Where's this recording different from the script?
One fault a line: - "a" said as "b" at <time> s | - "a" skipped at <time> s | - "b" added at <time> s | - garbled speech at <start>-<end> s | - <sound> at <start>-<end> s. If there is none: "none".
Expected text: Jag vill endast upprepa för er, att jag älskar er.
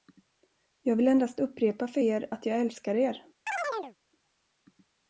- chirp at 3.5-4.0 s